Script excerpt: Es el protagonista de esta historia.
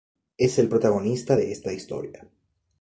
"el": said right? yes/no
yes